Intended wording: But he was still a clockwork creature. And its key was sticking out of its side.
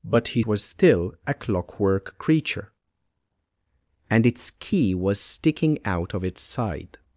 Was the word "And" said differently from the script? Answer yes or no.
no